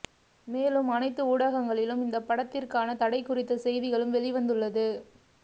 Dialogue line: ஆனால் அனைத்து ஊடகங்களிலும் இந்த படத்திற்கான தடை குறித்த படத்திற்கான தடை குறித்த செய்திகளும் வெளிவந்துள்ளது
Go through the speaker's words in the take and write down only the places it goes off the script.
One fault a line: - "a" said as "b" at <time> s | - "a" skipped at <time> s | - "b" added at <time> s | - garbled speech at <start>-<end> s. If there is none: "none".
- "ஆனால்" said as "மேலும்" at 0.5 s
- "படத்திற்கான தடை குறித்த" skipped at 3.6 s